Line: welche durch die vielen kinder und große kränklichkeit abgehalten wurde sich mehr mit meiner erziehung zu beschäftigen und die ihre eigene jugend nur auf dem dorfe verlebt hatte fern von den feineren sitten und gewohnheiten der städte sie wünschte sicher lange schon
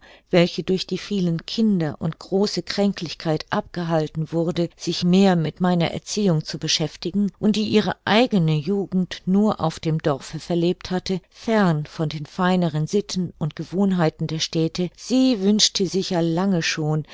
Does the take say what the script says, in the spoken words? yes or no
yes